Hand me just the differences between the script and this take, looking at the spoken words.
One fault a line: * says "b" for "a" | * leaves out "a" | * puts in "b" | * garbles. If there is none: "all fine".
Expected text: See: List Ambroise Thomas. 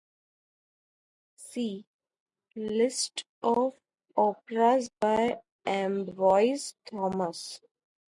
* puts in "of operas by"